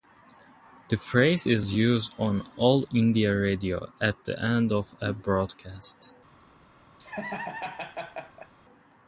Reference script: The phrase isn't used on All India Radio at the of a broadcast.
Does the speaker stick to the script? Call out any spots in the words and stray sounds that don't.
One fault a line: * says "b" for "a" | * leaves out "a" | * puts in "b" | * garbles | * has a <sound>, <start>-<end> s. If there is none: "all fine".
* says "is" for "isn't"
* puts in "end"
* has a laugh, 7.0-8.5 s